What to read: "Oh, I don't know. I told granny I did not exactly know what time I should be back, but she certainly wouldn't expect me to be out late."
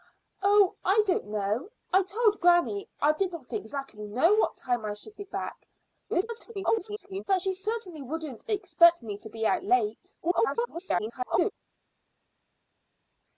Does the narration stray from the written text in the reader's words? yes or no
yes